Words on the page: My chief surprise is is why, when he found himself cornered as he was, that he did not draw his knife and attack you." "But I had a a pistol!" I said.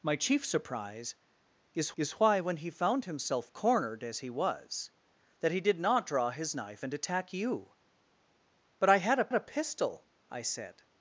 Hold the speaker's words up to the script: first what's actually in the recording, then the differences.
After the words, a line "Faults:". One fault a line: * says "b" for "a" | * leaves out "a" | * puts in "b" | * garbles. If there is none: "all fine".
My chief surprise is is why, when he found himself cornered as he was, that he did not draw his knife and attack you." "But I had a a pistol!" I said.
Faults:
all fine